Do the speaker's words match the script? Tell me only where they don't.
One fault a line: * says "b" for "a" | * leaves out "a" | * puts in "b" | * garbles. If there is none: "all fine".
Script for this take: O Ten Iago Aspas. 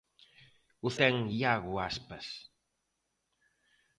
all fine